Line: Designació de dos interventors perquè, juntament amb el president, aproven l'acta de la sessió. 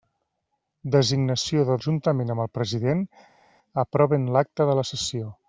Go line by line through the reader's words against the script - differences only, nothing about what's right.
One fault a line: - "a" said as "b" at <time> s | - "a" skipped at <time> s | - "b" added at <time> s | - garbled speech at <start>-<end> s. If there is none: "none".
- "dos interventors perquè" skipped at 1.8 s